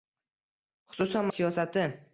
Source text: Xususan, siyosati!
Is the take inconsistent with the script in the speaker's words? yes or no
no